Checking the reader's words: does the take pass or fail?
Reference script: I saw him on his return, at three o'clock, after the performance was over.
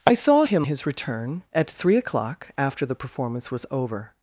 fail